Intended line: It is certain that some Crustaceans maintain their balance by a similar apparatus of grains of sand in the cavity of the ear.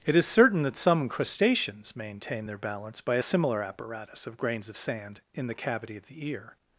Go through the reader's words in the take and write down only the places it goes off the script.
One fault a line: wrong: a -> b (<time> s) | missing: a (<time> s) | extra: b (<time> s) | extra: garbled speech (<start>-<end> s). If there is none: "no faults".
no faults